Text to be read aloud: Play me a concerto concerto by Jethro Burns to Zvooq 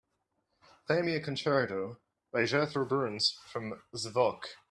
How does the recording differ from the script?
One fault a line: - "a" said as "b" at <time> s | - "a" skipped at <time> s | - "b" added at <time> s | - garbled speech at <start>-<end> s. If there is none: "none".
- "concerto" skipped at 2.0 s
- "to" said as "from" at 3.3 s